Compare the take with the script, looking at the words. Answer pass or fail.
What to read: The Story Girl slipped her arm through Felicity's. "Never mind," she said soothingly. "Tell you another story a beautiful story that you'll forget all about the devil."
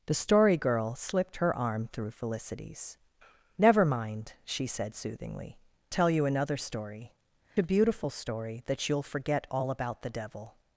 pass